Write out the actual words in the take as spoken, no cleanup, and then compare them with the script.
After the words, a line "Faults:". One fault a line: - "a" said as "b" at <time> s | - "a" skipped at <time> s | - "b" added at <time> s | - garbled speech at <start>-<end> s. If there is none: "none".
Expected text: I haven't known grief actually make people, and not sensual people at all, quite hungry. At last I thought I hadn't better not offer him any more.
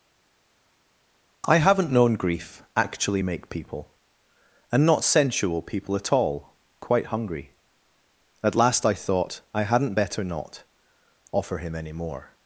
I haven't known grief actually make people, and not sensual people at all, quite hungry. At last I thought I hadn't better not offer him any more.
Faults:
none